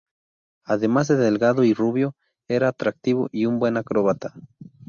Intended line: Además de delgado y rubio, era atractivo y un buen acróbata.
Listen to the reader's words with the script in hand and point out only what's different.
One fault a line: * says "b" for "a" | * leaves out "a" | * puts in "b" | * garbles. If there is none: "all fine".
all fine